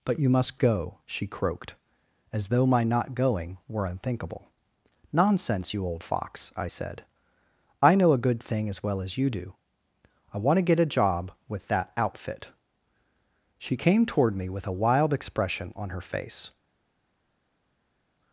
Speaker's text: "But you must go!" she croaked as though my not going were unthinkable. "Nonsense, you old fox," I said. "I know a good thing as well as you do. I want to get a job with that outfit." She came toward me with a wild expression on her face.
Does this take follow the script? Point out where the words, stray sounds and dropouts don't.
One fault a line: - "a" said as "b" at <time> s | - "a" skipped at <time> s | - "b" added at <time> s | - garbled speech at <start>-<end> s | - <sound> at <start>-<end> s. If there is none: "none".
none